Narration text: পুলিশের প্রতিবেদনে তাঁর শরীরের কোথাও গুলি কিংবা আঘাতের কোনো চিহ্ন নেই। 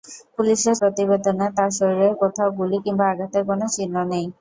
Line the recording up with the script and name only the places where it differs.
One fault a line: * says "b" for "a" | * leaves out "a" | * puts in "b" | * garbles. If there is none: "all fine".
all fine